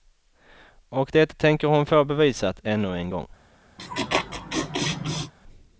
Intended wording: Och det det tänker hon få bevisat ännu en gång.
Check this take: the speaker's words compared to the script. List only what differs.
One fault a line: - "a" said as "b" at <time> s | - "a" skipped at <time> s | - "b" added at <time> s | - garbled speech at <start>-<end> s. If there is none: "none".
- "det" skipped at 1.4 s